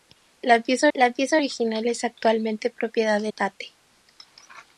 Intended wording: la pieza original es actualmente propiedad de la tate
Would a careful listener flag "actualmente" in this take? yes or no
no